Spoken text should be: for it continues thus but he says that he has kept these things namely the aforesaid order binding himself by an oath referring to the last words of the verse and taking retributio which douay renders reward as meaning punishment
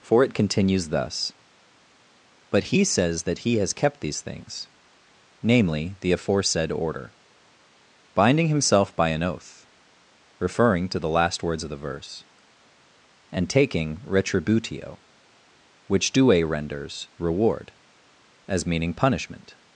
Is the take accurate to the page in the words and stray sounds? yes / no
yes